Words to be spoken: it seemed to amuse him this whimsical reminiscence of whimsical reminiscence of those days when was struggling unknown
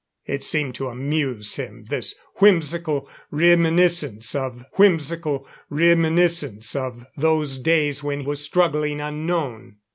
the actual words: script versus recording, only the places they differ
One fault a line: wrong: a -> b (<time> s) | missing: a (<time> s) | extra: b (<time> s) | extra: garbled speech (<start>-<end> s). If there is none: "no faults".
no faults